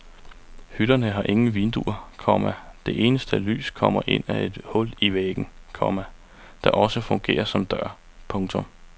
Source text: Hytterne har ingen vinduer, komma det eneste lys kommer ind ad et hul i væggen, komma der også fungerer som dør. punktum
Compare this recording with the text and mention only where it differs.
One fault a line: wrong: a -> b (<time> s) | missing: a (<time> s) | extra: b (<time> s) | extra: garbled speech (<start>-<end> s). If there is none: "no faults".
no faults